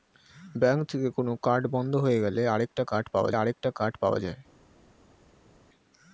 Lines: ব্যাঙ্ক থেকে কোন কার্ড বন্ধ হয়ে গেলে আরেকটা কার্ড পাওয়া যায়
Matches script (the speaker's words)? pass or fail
fail